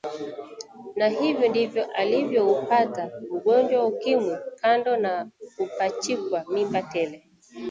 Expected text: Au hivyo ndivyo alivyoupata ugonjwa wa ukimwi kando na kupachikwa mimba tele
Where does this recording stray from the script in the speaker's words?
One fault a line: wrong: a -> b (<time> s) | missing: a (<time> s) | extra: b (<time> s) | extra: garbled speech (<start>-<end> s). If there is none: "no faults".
wrong: Au -> Na (0.9 s)